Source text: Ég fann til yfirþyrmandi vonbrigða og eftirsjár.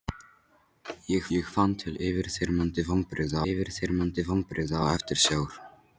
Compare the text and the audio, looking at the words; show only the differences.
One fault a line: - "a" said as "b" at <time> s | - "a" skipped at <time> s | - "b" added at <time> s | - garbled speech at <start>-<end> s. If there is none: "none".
- "ég" added at 1.4 s
- "yfirþyrmandi vonbrigða" added at 3.5 s